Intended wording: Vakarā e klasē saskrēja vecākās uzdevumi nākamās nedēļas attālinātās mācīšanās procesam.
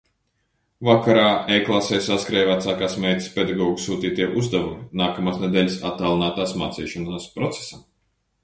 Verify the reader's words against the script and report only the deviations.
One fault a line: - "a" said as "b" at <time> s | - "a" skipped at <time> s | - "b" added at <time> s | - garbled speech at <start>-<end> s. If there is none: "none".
- "meitas pedagogu sūtītie" added at 3.0 s